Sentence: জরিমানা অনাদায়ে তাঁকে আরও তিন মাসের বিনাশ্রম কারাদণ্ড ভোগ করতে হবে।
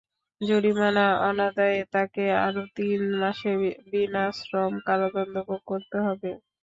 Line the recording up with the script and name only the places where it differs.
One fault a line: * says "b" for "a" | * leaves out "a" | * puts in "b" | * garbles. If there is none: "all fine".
all fine